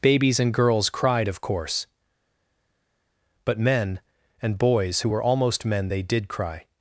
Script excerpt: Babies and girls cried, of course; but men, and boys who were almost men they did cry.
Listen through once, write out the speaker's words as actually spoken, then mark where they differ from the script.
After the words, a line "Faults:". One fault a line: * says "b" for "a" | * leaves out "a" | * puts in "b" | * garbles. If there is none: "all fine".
Babies and girls cried, of course; but men, and boys who were almost men they did cry.
Faults:
all fine